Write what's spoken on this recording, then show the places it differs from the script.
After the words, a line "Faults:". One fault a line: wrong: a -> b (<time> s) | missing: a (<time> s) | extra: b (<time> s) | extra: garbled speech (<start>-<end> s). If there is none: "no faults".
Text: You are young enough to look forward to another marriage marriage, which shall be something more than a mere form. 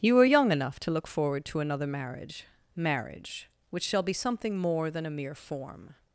You are young enough to look forward to another marriage marriage, which shall be something more than a mere form.
Faults:
no faults